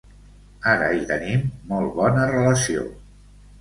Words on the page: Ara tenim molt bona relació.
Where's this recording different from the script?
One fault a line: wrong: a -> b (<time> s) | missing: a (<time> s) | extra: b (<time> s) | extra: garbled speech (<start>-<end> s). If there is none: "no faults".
extra: hi (0.9 s)